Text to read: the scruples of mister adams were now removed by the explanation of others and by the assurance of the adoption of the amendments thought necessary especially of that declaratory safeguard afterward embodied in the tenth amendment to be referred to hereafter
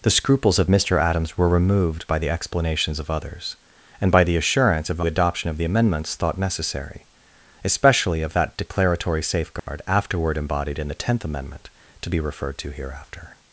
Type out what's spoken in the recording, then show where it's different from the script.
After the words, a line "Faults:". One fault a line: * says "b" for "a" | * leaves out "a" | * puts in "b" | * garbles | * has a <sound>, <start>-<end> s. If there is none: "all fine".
the scruples of mister adams were removed by the explanations of others and by the assurance of the adoption of the amendments thought necessary especially of that declaratory safeguard afterward embodied in the tenth amendment to be referred to hereafter
Faults:
* leaves out "now"
* says "explanations" for "explanation"
* has a dropout, 9.6-9.7 s